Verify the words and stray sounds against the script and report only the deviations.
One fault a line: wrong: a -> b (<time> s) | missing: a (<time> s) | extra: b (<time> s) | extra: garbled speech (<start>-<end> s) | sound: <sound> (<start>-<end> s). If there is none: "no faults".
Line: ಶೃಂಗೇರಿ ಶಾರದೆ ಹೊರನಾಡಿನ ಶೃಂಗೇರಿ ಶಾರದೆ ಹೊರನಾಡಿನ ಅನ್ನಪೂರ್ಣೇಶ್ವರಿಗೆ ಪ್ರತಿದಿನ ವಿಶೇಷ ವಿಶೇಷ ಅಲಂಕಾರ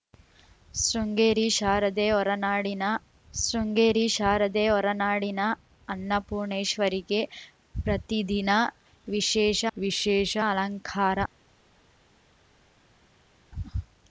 no faults